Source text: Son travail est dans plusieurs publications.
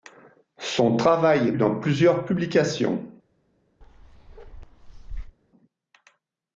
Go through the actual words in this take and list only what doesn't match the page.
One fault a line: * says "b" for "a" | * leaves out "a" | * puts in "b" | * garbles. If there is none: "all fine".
all fine